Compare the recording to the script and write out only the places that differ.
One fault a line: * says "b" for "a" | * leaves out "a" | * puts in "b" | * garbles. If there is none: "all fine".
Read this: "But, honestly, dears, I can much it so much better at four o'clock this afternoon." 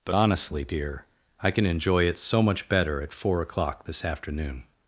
* says "dear" for "dears"
* says "enjoy" for "much"